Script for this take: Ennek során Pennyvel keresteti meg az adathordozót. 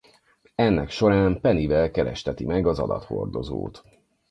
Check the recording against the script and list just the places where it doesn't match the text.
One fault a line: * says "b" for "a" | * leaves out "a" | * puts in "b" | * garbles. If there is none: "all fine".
all fine